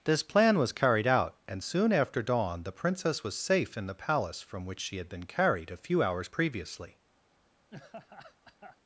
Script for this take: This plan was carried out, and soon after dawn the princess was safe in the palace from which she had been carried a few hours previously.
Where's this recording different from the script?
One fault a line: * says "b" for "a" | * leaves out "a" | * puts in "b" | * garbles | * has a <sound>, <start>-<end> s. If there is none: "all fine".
* has a laugh, 7.7-8.8 s